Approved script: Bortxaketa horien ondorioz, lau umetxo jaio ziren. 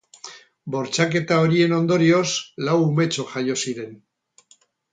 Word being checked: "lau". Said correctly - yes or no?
yes